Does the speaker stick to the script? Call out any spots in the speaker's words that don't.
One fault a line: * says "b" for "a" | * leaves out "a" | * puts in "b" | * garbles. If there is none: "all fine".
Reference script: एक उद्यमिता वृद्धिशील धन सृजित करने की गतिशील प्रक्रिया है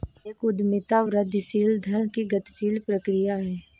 * leaves out "सृजित करने"